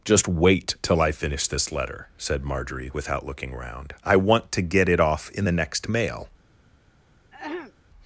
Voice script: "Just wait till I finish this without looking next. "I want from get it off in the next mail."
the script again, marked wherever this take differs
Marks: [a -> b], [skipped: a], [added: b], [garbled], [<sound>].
"Just wait till I finish this [added: letter said Marjorie] without looking [next. -> round] "I want [from -> to] get it off in the next mail." [throat clearing]